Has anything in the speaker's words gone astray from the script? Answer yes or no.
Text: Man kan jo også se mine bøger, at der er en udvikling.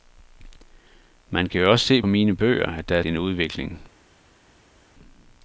no